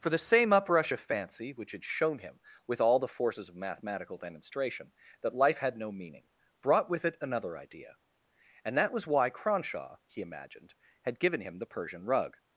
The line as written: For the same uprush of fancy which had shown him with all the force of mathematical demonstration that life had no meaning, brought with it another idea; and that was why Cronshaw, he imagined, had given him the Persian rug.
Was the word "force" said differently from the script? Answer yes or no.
yes